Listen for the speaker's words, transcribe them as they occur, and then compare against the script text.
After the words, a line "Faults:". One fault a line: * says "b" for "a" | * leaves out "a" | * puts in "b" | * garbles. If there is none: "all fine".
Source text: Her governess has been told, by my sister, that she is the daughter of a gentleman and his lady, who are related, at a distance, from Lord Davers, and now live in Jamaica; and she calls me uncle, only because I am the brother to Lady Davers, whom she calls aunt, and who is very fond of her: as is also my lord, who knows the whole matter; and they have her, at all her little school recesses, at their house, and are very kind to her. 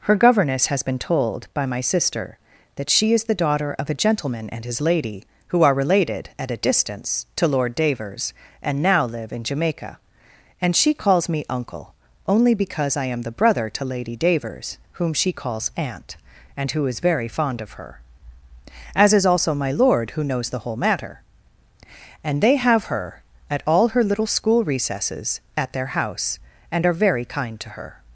Her governess has been told, by my sister, that she is the daughter of a gentleman and his lady, who are related, at a distance, to Lord Davers, and now live in Jamaica; and she calls me uncle, only because I am the brother to Lady Davers, whom she calls aunt, and who is very fond of her: as is also my lord, who knows the whole matter; and they have her, at all her little school recesses, at their house, and are very kind to her.
Faults:
* says "to" for "from"